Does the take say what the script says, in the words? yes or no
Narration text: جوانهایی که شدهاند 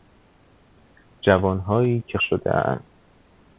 yes